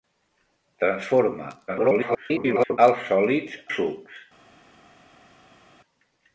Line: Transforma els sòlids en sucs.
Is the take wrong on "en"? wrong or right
wrong